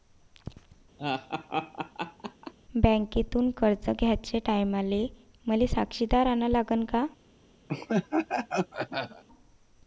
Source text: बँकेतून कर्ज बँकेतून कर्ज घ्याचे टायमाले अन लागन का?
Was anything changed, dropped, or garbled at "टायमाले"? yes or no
yes